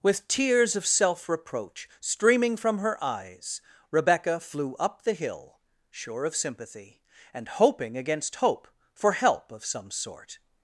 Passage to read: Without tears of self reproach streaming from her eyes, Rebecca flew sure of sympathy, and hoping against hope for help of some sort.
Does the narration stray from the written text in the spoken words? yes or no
yes